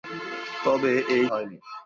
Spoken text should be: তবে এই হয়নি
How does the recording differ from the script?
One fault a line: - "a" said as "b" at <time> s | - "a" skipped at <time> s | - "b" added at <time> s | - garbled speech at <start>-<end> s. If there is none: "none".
none